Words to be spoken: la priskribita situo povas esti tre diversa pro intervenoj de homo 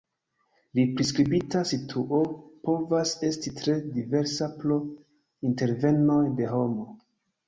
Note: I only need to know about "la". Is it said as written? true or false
true